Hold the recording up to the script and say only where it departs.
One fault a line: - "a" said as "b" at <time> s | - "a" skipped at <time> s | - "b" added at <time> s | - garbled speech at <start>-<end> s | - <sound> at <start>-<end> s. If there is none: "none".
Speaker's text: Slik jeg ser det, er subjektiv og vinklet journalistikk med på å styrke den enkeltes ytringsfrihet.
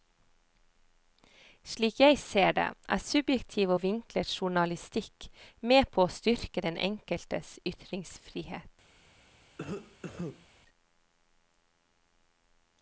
- cough at 9.6-10.5 s